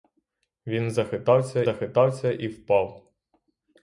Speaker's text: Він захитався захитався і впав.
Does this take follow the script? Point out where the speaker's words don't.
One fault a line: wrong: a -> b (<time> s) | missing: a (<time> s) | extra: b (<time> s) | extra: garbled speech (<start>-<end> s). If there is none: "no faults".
no faults